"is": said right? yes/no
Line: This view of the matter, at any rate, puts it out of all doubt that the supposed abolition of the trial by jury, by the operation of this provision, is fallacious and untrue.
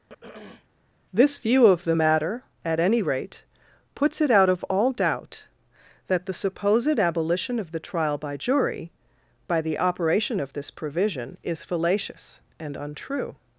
yes